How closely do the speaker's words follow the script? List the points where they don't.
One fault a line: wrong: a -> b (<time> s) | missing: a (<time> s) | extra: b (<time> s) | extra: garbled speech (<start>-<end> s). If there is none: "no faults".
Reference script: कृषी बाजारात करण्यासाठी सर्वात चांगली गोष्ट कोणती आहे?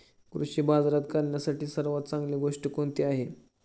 no faults